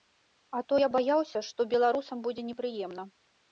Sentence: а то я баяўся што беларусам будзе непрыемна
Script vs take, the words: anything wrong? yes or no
no